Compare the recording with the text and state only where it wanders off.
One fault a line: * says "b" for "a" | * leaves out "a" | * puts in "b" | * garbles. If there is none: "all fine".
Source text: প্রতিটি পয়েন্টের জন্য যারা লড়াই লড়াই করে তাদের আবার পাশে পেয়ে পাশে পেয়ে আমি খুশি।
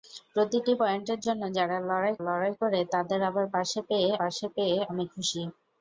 all fine